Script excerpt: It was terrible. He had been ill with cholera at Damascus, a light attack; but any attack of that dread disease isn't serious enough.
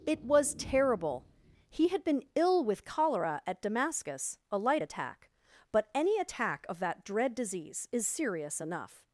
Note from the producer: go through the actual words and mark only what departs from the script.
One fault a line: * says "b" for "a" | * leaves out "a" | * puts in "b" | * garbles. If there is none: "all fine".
* says "is" for "isn't"